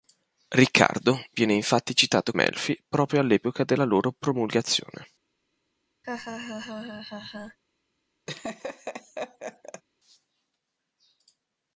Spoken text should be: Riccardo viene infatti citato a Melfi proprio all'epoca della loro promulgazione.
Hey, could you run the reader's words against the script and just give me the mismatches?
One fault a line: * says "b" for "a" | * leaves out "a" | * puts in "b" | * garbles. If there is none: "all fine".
all fine